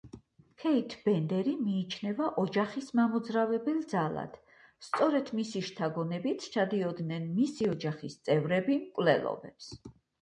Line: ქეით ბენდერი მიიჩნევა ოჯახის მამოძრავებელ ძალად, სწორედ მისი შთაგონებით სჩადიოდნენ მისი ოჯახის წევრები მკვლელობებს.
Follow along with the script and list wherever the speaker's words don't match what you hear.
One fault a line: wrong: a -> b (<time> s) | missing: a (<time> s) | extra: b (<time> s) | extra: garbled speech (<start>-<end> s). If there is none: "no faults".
no faults